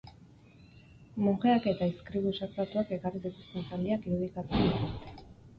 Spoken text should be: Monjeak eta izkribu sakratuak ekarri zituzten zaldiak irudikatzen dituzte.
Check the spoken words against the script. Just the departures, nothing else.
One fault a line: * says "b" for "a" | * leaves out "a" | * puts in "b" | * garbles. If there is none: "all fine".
all fine